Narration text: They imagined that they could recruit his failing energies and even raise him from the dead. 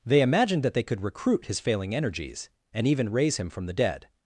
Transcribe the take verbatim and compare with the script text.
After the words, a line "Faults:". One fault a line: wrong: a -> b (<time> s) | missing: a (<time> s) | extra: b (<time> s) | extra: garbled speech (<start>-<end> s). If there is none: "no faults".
They imagined that they could recruit his failing energies and even raise him from the dead.
Faults:
no faults